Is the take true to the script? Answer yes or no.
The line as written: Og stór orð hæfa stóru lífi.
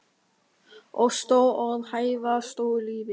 yes